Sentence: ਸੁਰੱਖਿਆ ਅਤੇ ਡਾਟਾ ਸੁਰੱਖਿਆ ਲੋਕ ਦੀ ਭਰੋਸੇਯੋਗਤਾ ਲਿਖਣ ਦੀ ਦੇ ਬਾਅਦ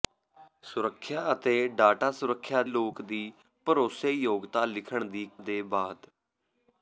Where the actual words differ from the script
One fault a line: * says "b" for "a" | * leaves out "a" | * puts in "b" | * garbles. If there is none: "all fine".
all fine